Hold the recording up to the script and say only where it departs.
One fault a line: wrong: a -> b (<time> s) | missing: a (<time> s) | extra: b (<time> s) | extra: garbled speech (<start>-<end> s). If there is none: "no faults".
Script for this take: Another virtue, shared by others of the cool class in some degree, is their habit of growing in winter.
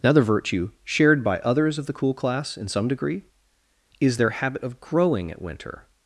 wrong: in -> at (5.3 s)